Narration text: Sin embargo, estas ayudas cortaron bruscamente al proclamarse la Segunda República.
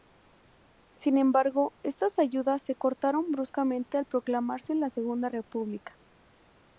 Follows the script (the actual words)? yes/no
no